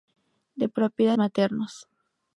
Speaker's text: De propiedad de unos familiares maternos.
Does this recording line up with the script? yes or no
no